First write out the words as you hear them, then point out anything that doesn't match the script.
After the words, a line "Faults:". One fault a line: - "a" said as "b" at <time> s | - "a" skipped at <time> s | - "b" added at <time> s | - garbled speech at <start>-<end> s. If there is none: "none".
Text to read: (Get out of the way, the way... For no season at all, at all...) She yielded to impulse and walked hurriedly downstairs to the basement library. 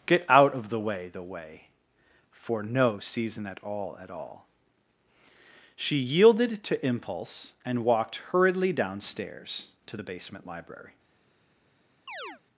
(Get out of the way, the way... For no season at all, at all...) She yielded to impulse and walked hurriedly downstairs to the basement library.
Faults:
none